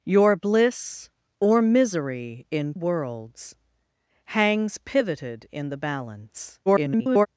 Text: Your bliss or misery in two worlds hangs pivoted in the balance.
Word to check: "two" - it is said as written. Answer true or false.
false